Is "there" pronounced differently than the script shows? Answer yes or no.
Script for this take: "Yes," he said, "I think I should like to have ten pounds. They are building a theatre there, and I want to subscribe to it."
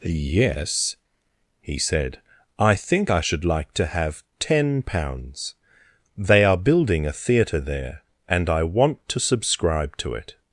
no